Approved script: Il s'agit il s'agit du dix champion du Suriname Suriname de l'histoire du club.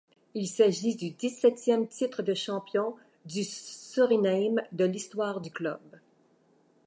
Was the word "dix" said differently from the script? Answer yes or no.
yes